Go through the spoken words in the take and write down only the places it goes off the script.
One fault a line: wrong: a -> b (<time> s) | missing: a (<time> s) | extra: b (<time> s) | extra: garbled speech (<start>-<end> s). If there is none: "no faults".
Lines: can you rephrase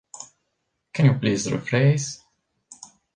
extra: please (1.1 s)